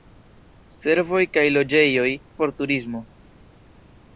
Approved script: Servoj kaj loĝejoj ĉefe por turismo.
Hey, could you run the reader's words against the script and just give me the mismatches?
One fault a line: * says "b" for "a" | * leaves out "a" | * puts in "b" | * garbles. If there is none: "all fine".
* leaves out "ĉefe"